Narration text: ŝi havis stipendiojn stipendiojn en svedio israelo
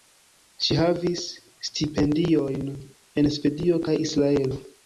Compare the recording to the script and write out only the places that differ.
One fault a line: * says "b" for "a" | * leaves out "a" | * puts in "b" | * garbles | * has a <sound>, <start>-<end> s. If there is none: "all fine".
* leaves out "stipendiojn"
* puts in "kaj"